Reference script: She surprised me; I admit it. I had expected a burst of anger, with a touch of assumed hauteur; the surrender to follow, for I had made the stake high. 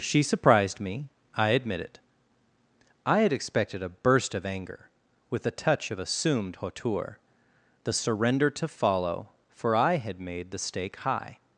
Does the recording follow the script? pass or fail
pass